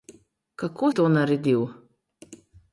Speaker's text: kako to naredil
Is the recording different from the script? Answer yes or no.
no